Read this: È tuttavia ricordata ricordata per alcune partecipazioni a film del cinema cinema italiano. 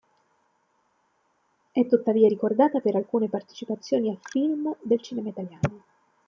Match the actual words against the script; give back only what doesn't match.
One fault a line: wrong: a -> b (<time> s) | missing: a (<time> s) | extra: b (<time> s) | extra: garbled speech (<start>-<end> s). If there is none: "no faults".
missing: ricordata (2.8 s)
missing: cinema (5.3 s)